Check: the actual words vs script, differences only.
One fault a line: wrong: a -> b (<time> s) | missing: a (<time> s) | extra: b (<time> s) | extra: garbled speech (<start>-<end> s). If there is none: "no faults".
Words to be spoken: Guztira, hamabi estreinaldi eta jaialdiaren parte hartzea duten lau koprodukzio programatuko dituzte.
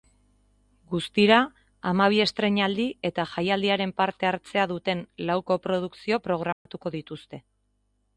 no faults